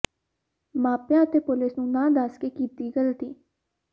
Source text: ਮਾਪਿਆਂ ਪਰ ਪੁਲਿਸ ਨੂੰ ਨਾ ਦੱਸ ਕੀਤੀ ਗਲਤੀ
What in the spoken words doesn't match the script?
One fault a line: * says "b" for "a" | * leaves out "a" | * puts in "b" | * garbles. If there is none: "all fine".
* says "ਅਤੇ" for "ਪਰ"
* puts in "ਕੇ"